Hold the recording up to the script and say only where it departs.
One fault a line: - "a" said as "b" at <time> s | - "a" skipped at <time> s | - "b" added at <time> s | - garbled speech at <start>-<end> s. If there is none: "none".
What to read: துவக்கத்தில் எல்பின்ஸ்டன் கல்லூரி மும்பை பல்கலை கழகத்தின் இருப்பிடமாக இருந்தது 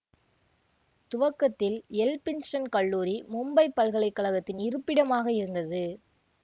none